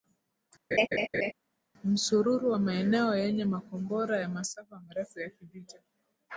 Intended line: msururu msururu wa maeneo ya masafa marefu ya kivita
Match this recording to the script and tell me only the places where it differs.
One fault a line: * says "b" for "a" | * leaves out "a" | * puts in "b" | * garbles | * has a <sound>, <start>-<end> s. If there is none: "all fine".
* has a laugh, 0.7-1.3 s
* leaves out "msururu"
* puts in "yenye makombora"